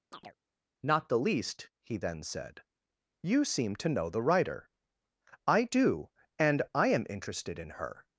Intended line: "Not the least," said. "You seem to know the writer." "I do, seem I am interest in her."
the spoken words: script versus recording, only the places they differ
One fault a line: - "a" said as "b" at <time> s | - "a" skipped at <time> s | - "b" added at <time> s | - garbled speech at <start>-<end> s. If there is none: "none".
- "he then" added at 1.8 s
- "seem" said as "and" at 6.4 s
- "interest" said as "interested" at 7.1 s